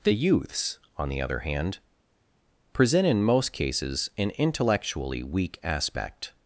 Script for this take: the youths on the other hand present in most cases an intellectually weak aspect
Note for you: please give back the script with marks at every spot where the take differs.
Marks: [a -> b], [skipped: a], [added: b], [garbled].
the youths on the other hand present in most cases an intellectually weak aspect